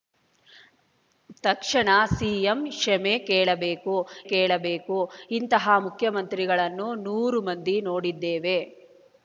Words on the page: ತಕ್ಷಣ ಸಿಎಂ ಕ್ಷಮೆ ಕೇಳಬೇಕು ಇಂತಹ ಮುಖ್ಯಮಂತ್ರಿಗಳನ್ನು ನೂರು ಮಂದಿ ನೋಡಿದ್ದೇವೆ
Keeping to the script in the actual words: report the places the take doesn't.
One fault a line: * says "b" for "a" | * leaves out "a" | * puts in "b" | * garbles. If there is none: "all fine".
* puts in "ಕೇಳಬೇಕು"